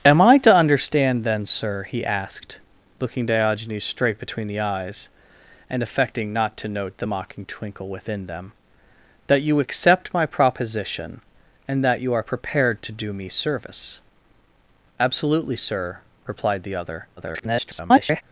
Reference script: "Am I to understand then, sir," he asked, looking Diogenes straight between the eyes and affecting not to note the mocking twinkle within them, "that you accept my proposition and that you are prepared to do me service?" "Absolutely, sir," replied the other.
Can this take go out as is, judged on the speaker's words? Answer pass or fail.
fail